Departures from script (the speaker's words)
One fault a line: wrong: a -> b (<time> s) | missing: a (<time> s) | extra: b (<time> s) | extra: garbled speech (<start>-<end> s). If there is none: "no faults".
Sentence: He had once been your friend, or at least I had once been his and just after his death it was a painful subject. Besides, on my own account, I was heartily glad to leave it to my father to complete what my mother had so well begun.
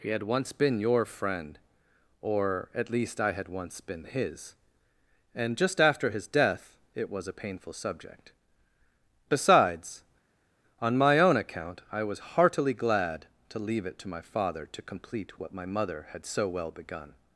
no faults